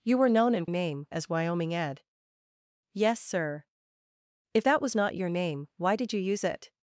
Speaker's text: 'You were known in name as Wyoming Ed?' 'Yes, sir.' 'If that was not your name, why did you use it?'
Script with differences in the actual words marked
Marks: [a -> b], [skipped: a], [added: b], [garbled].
'You were known in name as Wyoming Ed?' 'Yes, sir.' 'If that was not your name, why did you use it?'